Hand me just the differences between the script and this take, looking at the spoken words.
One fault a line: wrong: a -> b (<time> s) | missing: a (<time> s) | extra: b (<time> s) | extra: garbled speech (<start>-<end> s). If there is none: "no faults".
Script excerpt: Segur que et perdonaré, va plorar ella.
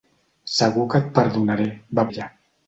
missing: plorar (2.1 s)